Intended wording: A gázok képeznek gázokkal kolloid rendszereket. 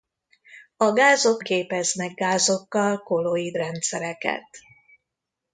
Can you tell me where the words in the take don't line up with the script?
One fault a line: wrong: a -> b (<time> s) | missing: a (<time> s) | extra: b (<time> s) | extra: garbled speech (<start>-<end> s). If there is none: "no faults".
no faults